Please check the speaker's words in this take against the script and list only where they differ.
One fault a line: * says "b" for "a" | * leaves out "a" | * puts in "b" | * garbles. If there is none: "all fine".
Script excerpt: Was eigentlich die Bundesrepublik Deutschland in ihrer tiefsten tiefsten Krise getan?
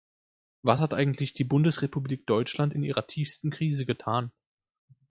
* puts in "hat"
* leaves out "tiefsten"